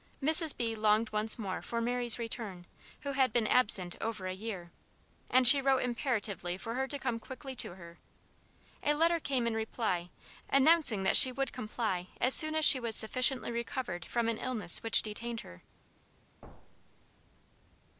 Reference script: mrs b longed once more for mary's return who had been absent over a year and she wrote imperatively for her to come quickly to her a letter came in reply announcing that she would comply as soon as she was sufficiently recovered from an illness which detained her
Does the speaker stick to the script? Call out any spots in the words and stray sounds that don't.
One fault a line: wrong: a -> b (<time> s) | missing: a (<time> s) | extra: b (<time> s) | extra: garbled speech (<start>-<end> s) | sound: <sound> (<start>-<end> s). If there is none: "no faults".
sound: thud (16.4-17.1 s)